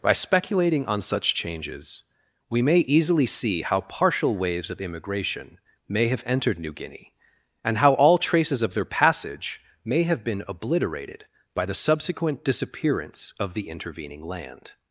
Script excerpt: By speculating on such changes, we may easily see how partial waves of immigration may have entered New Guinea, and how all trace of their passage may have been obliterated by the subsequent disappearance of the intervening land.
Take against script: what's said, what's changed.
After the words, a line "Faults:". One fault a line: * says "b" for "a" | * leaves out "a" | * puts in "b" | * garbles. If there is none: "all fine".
By speculating on such changes, we may easily see how partial waves of immigration may have entered New Guinea, and how all traces of their passage may have been obliterated by the subsequent disappearance of the intervening land.
Faults:
* says "traces" for "trace"